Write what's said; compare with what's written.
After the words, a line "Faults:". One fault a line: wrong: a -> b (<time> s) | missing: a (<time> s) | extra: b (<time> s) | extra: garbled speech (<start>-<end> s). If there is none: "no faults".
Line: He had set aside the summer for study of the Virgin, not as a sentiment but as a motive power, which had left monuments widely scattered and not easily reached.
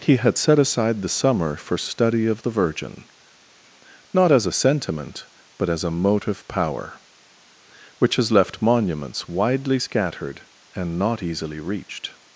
He had set aside the summer for study of the Virgin, not as a sentiment but as a motive power, which has left monuments widely scattered and not easily reached.
Faults:
wrong: had -> has (8.2 s)